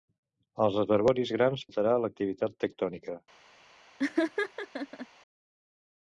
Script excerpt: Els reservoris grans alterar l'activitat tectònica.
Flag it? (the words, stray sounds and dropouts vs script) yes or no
yes